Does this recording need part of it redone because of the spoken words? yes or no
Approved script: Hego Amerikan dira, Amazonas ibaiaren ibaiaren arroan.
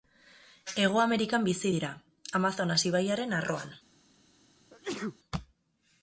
yes